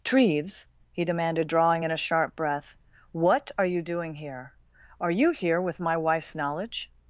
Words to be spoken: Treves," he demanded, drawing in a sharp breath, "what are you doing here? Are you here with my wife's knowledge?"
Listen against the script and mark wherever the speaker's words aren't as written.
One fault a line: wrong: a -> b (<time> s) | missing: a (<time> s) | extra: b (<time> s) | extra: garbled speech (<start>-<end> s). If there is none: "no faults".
no faults